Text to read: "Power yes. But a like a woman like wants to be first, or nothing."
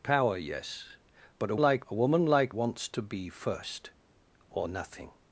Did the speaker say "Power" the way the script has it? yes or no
yes